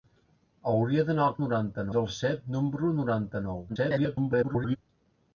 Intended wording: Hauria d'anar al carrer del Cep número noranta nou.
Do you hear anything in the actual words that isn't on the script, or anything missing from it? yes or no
yes